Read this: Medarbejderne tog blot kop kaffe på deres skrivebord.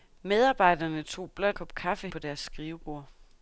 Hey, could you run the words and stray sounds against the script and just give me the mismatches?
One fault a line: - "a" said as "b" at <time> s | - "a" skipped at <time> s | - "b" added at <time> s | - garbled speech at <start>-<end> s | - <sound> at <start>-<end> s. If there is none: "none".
none